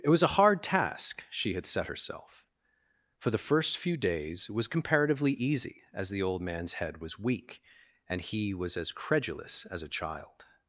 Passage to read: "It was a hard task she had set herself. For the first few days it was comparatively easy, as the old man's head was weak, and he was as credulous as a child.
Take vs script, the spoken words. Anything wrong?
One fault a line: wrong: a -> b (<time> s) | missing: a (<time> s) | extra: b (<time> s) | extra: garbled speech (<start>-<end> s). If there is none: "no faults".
missing: it (4.5 s)